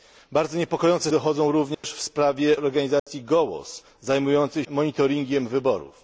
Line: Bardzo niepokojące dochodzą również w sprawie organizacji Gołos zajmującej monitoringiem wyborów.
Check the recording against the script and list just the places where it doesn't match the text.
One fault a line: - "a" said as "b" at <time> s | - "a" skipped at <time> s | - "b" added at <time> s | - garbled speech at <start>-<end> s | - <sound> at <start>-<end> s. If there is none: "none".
- dropout at 1.7-1.8 s
- dropout at 3.0-3.1 s